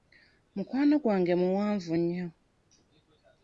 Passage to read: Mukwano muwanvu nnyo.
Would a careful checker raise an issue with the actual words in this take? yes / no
yes